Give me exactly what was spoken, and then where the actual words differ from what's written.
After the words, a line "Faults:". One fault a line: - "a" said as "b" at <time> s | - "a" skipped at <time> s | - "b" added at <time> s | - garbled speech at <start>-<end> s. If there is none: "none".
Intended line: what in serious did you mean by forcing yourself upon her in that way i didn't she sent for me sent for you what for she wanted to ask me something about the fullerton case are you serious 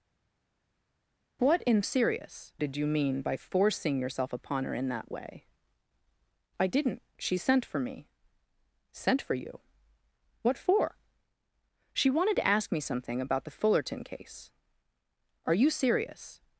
what in serious did you mean by forcing yourself upon her in that way i didn't she sent for me sent for you what for she wanted to ask me something about the fullerton case are you serious
Faults:
none